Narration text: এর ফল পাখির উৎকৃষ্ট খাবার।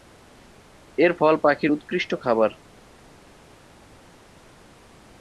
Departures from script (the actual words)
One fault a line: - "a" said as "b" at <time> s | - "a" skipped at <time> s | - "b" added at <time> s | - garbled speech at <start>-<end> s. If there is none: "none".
none